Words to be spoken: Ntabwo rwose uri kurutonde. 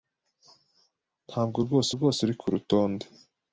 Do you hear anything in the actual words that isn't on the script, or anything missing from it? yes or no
yes